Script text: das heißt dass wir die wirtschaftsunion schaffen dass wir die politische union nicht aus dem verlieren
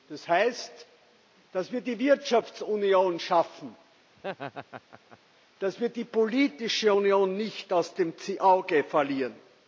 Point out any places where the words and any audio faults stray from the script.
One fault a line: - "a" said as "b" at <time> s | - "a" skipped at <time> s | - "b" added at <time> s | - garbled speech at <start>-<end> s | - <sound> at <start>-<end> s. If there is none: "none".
- laugh at 4.2-5.2 s
- "auge" added at 8.4 s